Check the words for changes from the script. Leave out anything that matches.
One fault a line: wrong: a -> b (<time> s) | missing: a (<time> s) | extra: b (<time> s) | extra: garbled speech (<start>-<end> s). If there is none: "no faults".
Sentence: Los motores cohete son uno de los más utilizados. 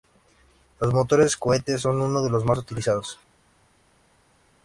no faults